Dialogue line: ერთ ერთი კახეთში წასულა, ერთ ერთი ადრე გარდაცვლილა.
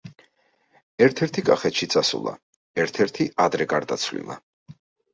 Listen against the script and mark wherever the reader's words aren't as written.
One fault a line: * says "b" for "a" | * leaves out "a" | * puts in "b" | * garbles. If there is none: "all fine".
all fine